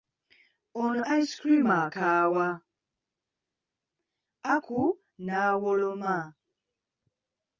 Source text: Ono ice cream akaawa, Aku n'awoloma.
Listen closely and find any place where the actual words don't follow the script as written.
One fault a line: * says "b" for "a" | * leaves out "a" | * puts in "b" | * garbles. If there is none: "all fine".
all fine